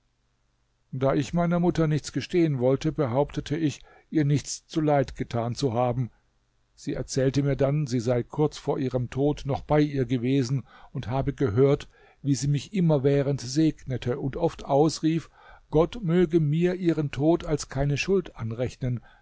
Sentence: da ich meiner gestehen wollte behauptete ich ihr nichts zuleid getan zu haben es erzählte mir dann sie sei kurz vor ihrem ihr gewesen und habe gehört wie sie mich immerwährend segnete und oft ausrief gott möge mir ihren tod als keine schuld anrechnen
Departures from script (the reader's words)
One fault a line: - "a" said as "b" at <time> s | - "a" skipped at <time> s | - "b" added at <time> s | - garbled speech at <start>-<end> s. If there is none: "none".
- "mutter nichts" added at 1.6 s
- "es" said as "sie" at 6.8 s
- "tod noch bei" added at 9.1 s